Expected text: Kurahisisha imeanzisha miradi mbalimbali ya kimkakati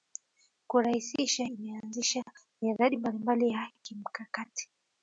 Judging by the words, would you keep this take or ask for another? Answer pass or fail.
pass